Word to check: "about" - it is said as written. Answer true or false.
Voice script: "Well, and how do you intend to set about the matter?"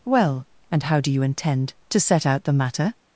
false